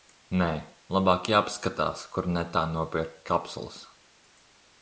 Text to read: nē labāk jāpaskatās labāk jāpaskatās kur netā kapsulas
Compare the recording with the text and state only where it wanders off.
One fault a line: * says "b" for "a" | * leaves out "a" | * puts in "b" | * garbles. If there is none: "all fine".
* leaves out "labāk jāpaskatās"
* puts in "nopirkt"